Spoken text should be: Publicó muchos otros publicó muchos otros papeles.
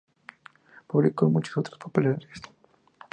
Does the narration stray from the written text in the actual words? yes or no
yes